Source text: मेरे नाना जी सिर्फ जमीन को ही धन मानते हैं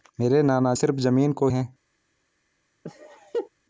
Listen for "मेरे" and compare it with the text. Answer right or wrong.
right